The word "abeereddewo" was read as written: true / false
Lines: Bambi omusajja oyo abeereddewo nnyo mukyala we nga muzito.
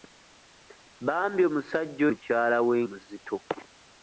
false